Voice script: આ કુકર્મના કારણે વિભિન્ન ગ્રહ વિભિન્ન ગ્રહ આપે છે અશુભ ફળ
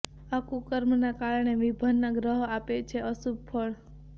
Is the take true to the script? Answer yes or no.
no